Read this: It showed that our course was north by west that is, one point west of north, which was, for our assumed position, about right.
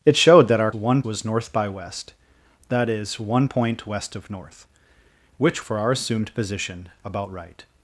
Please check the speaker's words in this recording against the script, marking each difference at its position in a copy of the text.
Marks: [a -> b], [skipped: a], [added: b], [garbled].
It showed that our [course -> one] was north by west that is, one point west of north, which [skipped: was,] for our assumed position, about right.